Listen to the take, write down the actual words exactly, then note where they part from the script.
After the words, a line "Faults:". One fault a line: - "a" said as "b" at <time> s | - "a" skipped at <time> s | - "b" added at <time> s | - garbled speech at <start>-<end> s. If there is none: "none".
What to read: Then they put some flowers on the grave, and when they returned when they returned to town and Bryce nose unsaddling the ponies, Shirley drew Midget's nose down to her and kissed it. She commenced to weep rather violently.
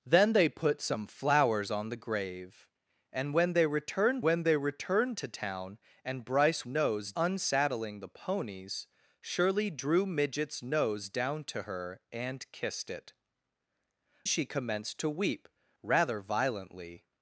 Then they put some flowers on the grave, and when they returned when they returned to town and Bryce nose unsaddling the ponies, Shirley drew Midget's nose down to her and kissed it. She commenced to weep rather violently.
Faults:
none